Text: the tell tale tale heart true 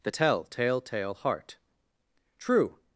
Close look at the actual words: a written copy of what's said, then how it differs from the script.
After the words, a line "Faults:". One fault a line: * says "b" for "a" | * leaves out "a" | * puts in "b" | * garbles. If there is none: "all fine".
the tell tale tale heart true
Faults:
all fine